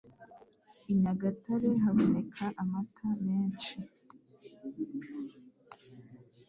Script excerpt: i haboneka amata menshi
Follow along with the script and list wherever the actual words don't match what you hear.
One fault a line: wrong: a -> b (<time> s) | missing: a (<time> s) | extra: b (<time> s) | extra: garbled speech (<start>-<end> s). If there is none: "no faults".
extra: nyagatare (1.0 s)